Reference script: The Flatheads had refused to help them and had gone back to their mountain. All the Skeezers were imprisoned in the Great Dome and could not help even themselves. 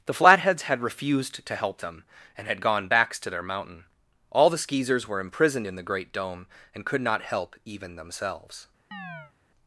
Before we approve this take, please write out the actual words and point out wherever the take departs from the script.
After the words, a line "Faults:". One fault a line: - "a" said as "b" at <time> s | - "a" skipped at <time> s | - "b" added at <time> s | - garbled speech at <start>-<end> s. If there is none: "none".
The Flatheads had refused to help them and had gone backs to their mountain. All the Skeezers were imprisoned in the Great Dome and could not help even themselves.
Faults:
- "back" said as "backs" at 2.9 s